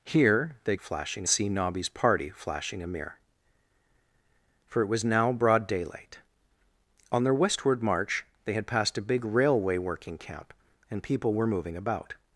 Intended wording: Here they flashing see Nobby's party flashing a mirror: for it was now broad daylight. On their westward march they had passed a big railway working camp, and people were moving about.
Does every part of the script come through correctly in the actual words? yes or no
yes